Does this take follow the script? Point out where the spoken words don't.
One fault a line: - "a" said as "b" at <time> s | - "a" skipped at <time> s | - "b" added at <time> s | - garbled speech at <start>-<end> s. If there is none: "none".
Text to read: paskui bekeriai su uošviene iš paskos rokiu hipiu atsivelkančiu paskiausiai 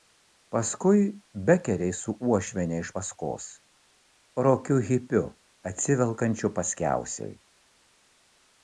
none